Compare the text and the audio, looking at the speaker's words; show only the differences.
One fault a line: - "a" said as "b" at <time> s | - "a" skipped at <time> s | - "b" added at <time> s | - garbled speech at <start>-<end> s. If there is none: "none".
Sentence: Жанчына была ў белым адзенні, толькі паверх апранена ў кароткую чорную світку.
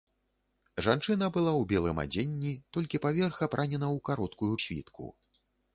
- "чорную" skipped at 4.5 s